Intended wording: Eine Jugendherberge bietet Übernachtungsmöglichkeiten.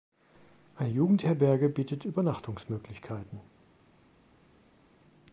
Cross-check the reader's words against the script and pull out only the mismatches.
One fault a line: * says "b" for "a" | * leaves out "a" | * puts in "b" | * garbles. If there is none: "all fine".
all fine